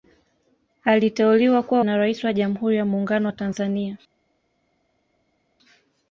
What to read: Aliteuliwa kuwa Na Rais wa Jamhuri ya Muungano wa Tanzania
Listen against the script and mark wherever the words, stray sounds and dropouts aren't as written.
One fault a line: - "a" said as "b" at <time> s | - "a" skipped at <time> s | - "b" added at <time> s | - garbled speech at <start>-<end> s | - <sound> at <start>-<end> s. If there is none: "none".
none